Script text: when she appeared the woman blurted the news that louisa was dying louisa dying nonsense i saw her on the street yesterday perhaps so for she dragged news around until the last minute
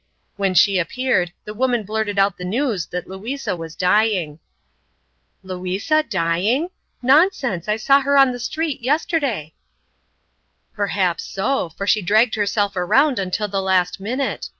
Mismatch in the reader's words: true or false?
true